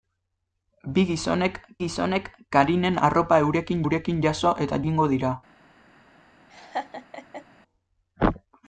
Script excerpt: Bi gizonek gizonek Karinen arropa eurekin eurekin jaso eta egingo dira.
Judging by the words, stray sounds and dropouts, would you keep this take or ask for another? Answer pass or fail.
fail